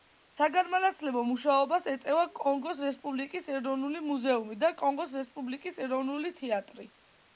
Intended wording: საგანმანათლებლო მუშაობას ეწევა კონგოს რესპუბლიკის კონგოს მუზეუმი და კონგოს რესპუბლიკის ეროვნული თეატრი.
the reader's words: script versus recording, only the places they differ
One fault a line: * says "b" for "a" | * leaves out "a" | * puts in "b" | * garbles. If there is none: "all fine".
* says "ეროვნული" for "კონგოს"